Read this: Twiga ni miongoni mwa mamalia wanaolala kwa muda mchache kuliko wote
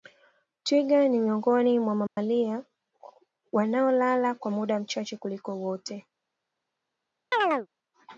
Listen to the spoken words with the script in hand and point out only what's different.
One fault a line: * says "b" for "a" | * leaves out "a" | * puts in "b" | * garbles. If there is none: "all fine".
all fine